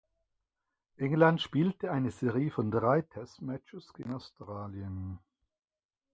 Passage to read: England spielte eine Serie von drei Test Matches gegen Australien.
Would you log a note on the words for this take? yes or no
no